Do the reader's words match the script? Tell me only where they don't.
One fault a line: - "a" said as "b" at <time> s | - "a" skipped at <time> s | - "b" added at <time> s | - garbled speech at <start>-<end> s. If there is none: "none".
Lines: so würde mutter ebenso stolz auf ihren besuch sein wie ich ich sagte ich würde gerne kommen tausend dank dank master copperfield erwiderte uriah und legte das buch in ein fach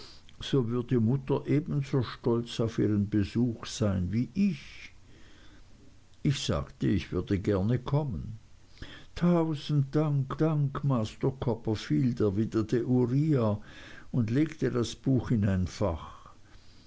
none